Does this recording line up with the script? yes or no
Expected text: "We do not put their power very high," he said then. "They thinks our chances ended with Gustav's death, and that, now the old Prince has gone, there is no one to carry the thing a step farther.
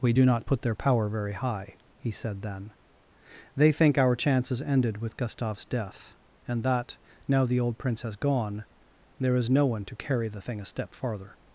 no